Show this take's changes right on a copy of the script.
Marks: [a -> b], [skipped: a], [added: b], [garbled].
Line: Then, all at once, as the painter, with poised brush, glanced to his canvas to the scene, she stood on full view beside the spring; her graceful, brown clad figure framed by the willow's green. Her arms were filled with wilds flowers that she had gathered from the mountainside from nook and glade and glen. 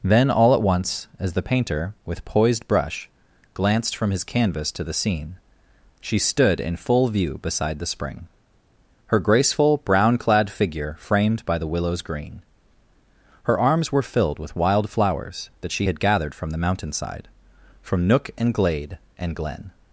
Then, all at once, as the painter, with poised brush, glanced [to -> from] his canvas to the scene, she stood [on -> in] full view beside the spring; her graceful, brown clad figure framed by the willow's green. Her arms were filled with [wilds -> wild] flowers that she had gathered from the mountainside from nook and glade and glen.